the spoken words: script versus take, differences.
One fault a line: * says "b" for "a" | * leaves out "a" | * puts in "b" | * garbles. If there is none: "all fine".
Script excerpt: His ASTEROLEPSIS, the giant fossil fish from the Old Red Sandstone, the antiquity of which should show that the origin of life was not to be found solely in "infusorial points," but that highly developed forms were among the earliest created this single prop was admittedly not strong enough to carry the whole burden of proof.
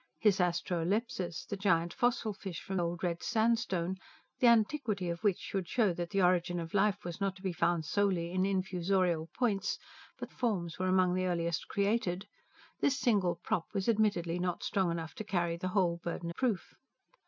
* leaves out "the"
* leaves out "that highly developed"
* leaves out "of"